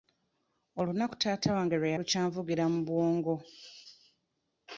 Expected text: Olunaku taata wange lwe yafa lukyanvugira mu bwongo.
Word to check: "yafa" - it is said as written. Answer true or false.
false